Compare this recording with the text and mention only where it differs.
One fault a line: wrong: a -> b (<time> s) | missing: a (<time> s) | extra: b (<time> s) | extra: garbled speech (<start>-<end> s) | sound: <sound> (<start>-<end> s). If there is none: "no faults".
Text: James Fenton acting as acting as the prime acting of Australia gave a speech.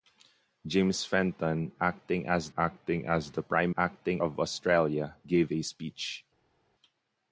no faults